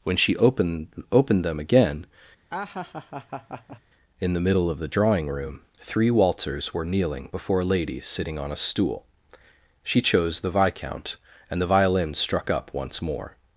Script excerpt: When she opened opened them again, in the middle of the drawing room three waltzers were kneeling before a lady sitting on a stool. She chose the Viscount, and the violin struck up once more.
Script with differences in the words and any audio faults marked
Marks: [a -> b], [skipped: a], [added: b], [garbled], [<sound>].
When she opened opened them again, [laugh] in the middle of the drawing room three waltzers were kneeling before a lady sitting on a stool. She chose the Viscount, and the violin struck up once more.